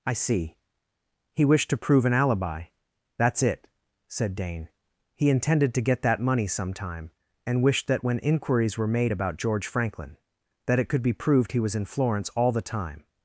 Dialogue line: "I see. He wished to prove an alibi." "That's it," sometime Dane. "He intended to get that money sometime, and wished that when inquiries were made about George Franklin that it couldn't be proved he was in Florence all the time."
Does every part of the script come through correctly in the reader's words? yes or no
no